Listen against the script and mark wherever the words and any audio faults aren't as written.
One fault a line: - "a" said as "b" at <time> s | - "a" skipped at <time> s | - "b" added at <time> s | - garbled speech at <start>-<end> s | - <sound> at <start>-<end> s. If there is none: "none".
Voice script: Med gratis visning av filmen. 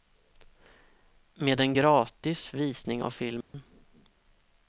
- "en" added at 1.6 s
- dropout at 3.4-3.5 s